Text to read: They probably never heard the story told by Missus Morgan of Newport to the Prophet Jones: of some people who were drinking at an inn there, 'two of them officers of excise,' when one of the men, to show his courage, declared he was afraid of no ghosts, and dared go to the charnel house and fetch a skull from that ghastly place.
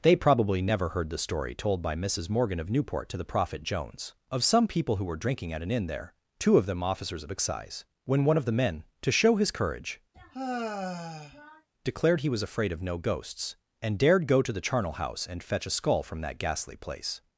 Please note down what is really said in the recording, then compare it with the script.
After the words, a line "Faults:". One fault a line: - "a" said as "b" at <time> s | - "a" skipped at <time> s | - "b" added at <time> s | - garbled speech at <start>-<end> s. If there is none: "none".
They probably never heard the story told by Missus Morgan of Newport to the Prophet Jones: of some people who were drinking at an inn there, 'two of them officers of excise,' when one of the men, to show his courage, declared he was afraid of no ghosts, and dared go to the charnel house and fetch a skull from that ghastly place.
Faults:
none